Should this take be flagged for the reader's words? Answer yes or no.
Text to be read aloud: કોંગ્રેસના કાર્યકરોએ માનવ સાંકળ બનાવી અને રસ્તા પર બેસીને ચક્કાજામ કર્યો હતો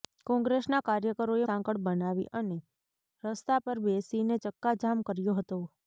yes